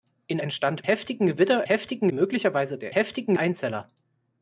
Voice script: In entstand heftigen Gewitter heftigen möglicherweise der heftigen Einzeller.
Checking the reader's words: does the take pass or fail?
pass